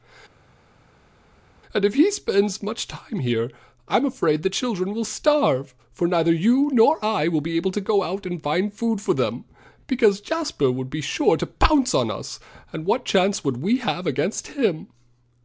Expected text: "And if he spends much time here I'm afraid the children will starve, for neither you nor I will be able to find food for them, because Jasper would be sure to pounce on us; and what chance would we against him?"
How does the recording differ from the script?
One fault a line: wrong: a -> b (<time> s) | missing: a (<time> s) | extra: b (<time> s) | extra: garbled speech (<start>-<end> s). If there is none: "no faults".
extra: go out and (7.8 s)
extra: have (13.8 s)